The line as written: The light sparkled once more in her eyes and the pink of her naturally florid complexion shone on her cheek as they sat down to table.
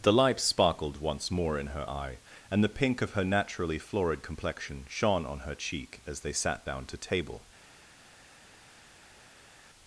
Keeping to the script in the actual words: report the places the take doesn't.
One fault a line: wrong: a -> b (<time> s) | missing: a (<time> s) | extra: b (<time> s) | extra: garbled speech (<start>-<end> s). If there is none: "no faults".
wrong: eyes -> eye (1.9 s)